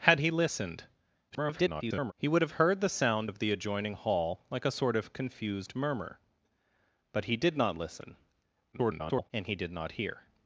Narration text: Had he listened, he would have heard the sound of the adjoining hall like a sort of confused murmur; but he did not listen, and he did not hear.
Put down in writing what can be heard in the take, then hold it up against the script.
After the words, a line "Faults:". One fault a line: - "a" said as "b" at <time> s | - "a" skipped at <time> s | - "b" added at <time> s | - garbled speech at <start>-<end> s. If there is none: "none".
Had he listened, [garbled] he would have heard the sound of the adjoining hall like a sort of confused murmur; but he did not listen, [garbled] and he did not hear.
Faults:
- garbled speech at 1.3-2.1 s
- garbled speech at 8.7-9.3 s